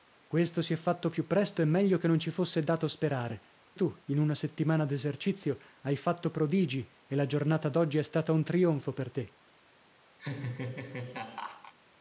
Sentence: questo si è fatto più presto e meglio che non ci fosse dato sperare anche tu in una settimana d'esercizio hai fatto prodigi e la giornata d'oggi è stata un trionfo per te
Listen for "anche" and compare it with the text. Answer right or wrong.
wrong